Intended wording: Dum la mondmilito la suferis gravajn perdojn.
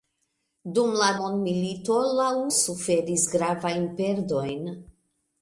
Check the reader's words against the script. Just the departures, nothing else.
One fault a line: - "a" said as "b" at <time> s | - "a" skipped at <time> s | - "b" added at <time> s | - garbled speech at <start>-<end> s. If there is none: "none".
none